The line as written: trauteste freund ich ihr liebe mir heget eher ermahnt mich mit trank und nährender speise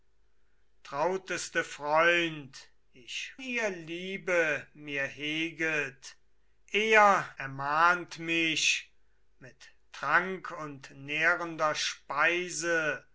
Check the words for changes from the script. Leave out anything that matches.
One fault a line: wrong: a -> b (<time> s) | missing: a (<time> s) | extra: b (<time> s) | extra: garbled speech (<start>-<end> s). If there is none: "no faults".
no faults